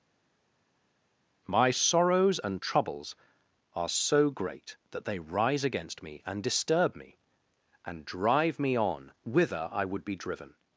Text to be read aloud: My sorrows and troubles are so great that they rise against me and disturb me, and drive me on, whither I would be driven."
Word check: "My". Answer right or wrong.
right